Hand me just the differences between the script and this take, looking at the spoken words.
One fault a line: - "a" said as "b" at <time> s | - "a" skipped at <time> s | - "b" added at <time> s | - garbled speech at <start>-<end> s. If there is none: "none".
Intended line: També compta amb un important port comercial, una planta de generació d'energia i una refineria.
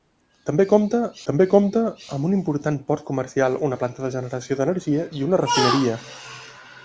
- "també compta" added at 1.3 s